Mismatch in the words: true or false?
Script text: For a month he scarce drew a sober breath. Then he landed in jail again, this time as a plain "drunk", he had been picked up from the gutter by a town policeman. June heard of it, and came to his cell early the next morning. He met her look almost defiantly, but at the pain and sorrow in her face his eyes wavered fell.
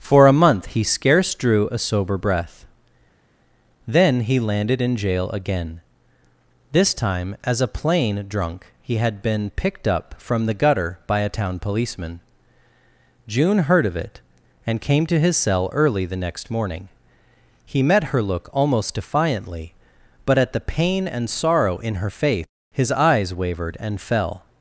true